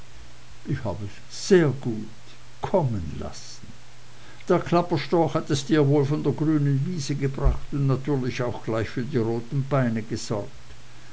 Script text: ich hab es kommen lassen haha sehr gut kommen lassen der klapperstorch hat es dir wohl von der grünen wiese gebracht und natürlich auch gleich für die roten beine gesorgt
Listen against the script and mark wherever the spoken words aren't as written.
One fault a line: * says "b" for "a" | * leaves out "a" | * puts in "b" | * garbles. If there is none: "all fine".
* leaves out "kommen lassen haha"